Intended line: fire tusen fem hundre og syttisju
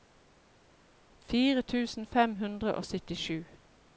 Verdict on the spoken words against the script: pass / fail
pass